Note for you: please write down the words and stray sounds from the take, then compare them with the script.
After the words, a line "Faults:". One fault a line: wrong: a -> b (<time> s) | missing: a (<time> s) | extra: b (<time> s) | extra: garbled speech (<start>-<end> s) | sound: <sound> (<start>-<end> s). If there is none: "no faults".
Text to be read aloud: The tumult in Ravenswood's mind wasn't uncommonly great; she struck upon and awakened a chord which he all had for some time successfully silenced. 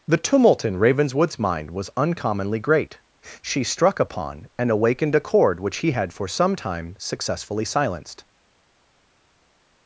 The tumult in Ravenswood's mind was uncommonly great; she struck upon and awakened a chord which he had for some time successfully silenced.
Faults:
wrong: wasn't -> was (1.7 s)
missing: all (5.9 s)